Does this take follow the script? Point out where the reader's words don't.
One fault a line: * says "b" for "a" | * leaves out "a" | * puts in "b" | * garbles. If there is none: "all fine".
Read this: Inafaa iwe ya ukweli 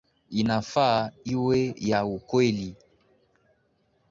all fine